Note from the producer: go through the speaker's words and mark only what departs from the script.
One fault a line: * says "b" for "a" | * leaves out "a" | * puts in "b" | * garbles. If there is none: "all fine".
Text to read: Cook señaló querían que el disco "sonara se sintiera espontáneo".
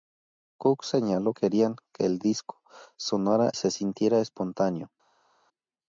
all fine